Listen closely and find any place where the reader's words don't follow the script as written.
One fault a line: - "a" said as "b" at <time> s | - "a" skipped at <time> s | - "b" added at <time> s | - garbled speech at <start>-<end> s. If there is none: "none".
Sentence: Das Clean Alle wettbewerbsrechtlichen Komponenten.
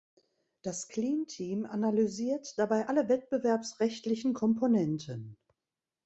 - "Team analysiert dabei" added at 1.3 s